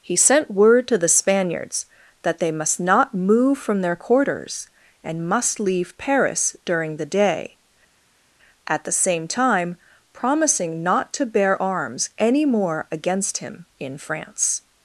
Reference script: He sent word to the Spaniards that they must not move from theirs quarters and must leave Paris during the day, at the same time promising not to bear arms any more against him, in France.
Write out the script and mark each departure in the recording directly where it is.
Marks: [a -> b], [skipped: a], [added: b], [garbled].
He sent word to the Spaniards that they must not move from [theirs -> their] quarters and must leave Paris during the day, at the same time promising not to bear arms any more against him, in France.